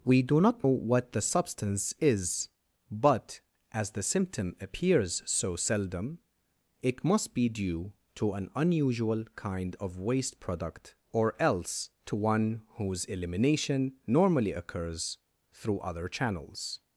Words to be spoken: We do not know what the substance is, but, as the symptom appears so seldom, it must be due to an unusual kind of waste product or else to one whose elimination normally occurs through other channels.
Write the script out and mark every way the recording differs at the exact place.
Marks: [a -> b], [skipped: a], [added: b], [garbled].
We do not [skipped: know] what the substance is, but, as the symptom appears so seldom, it must be due to an unusual kind of waste product or else to one whose elimination normally occurs through other channels.